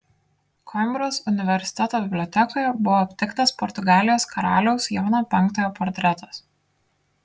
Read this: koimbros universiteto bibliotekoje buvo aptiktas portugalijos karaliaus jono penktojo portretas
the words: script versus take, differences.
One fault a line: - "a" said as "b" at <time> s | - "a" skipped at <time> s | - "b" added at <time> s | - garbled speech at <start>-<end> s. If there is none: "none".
none